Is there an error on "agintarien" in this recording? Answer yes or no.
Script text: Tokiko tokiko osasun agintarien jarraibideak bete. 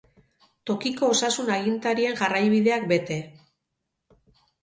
no